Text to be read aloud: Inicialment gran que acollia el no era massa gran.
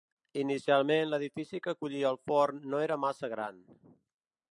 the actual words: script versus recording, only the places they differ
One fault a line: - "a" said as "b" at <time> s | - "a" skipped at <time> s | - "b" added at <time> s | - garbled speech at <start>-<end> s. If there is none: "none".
- "gran" said as "l'edifici" at 1.1 s
- "forn" added at 2.3 s